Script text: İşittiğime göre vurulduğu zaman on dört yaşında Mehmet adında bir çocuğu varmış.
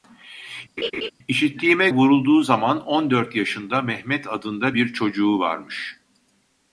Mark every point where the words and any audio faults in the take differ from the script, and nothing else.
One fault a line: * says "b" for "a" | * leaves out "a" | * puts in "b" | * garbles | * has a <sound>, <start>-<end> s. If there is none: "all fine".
* has a laugh, 0.8-1.1 s
* leaves out "göre"